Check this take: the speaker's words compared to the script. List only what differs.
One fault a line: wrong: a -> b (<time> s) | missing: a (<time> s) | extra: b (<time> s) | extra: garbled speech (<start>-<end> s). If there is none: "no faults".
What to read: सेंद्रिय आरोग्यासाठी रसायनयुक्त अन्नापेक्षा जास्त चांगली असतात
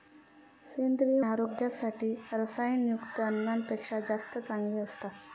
no faults